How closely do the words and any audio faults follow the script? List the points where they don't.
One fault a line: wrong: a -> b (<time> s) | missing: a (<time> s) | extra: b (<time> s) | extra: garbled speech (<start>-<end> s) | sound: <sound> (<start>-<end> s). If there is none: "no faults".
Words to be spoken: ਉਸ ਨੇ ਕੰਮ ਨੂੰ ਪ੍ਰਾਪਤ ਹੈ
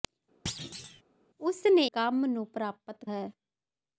sound: thud (0.5-1.0 s)